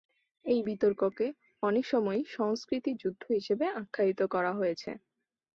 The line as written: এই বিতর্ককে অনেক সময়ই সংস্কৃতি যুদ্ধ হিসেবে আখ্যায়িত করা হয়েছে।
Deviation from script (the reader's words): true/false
false